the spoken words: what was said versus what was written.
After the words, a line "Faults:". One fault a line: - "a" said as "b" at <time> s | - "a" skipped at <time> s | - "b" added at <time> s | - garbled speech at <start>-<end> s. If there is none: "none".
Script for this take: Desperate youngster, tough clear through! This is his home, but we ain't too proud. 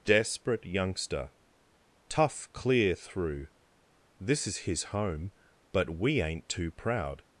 Desperate youngster, tough clear through! This is his home, but we ain't too proud.
Faults:
none